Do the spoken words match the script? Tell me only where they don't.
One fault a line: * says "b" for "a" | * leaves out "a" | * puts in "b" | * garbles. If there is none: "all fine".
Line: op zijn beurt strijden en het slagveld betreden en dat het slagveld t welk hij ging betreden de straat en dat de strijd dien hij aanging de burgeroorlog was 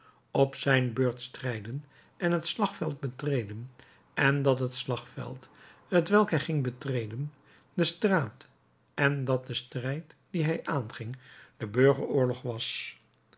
all fine